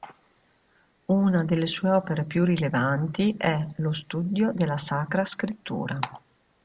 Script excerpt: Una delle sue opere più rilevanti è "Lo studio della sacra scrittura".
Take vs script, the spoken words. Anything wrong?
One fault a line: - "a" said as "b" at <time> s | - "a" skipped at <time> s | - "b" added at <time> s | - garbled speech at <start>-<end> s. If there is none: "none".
none